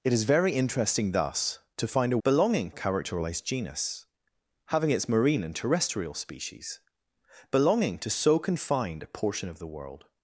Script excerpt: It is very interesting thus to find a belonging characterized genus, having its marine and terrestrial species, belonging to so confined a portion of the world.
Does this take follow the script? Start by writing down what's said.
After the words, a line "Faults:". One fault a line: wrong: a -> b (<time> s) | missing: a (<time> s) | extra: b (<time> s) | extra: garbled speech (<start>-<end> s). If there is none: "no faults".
It is very interesting thus to find a belonging characterized genus, having its marine and terrestrial species, belonging to so confined a portion of the world.
Faults:
no faults